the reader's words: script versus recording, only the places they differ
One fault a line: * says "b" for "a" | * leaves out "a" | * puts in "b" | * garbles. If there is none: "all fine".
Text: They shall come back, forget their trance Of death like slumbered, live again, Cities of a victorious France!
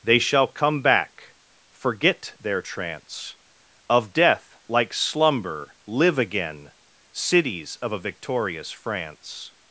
* says "slumber" for "slumbered"